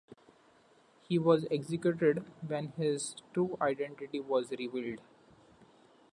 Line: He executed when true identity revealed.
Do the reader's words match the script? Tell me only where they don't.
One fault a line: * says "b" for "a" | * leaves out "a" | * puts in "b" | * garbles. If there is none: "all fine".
* puts in "was"
* puts in "his"
* puts in "was"